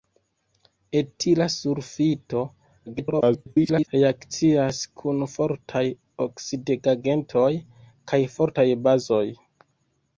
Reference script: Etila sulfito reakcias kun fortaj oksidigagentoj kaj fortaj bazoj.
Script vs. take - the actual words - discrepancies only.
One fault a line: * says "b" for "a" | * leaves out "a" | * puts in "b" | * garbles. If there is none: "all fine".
* garbles